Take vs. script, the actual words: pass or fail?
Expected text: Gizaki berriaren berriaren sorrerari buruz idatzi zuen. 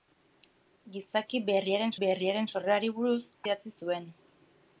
pass